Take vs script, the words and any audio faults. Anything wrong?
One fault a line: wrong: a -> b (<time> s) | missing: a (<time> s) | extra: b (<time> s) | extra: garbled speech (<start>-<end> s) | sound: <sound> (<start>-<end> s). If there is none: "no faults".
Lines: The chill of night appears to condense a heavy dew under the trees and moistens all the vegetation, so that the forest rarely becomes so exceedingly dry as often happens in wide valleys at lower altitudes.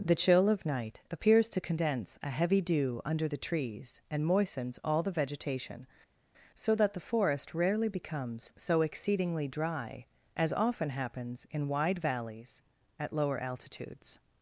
no faults